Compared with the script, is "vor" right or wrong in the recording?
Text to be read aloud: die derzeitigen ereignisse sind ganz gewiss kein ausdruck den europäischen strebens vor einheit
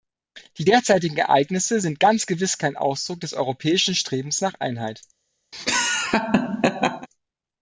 wrong